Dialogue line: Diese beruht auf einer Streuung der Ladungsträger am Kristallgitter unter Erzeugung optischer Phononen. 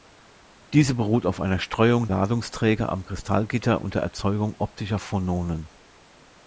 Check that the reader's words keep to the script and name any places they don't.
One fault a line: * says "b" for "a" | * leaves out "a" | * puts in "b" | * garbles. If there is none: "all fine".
* leaves out "der"